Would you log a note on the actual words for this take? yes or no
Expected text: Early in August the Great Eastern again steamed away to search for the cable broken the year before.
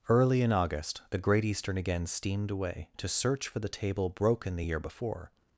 yes